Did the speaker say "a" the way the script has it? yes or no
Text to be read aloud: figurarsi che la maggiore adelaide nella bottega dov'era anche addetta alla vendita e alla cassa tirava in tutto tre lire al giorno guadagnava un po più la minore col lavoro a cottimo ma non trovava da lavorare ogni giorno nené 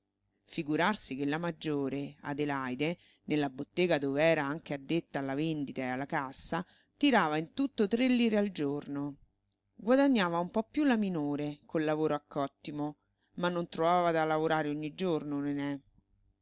yes